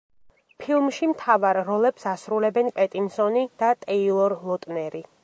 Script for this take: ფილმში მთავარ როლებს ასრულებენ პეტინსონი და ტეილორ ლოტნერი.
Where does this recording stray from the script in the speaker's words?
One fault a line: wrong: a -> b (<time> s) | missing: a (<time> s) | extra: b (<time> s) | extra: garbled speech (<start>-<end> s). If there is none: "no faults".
no faults